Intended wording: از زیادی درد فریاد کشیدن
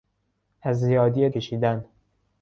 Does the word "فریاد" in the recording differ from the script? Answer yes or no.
yes